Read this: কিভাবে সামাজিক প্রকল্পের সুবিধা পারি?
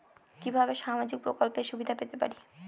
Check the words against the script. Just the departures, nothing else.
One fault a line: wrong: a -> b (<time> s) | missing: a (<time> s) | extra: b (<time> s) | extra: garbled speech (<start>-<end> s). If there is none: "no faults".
extra: পেতে (1.9 s)